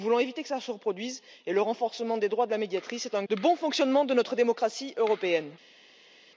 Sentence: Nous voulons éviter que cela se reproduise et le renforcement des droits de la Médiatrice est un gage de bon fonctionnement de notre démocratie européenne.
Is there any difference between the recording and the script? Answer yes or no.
yes